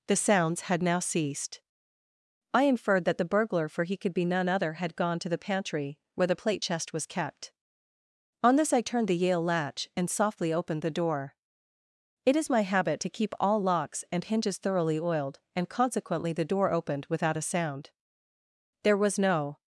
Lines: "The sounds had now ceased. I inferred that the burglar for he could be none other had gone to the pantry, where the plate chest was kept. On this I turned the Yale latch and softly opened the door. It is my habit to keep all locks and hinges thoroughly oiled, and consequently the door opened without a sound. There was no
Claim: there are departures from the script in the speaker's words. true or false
false